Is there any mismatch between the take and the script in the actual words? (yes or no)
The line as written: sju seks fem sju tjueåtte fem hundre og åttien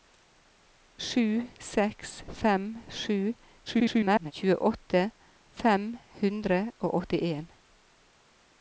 yes